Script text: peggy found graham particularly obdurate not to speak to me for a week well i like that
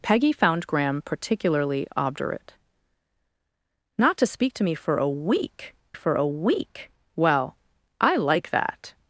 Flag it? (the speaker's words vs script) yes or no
yes